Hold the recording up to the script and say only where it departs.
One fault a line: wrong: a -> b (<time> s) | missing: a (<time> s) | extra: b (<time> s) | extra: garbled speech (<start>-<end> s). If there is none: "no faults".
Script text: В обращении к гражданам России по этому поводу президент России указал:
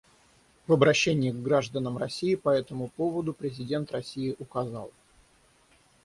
no faults